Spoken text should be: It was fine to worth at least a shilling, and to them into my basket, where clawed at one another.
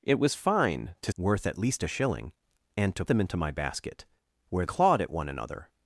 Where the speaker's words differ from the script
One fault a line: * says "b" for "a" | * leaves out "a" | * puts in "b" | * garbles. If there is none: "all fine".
all fine